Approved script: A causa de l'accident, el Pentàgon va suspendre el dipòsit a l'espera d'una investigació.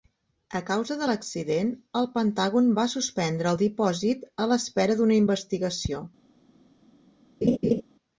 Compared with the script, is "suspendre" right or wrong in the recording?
right